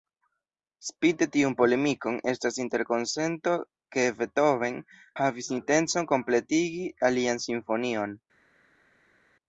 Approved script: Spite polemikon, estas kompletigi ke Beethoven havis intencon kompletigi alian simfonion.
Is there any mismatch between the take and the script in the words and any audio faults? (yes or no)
yes